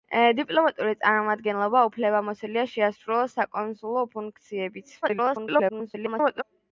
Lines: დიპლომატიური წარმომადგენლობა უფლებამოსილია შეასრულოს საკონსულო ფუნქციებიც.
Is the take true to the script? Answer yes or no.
no